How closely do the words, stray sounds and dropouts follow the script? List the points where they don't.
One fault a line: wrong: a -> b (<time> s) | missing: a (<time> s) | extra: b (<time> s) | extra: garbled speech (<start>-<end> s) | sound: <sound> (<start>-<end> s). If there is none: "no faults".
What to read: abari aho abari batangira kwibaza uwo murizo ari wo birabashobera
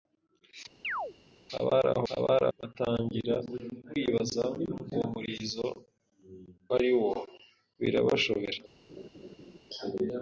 sound: chirp (0.8-1.1 s)
sound: laugh (8.9-9.6 s)